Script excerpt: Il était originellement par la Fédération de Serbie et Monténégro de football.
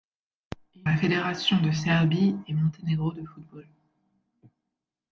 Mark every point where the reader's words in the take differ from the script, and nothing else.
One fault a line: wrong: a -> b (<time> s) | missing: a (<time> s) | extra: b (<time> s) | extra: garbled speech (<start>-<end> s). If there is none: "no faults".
missing: était originellement par (0.9 s)